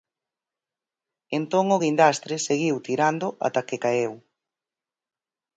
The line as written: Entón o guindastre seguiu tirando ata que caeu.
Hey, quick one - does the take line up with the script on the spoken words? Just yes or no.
yes